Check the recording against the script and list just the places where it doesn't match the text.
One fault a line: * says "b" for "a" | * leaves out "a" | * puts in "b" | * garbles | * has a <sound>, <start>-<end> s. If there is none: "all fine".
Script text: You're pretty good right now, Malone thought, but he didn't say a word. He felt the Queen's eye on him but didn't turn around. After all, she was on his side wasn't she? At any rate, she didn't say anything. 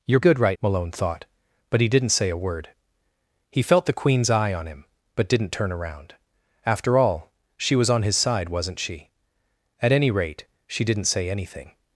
* leaves out "pretty"
* leaves out "now"